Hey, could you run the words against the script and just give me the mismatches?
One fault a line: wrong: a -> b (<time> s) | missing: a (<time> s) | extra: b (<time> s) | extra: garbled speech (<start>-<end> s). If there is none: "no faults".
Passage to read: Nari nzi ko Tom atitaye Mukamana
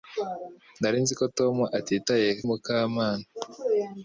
no faults